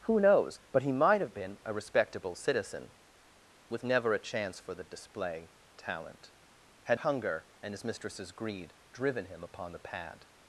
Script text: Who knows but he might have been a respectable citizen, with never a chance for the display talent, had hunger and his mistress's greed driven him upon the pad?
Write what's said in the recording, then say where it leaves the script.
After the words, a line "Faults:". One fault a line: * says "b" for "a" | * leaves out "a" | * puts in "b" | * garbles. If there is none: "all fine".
Who knows but he might have been a respectable citizen, with never a chance for the display talent, had hunger and his mistress's greed driven him upon the pad?
Faults:
all fine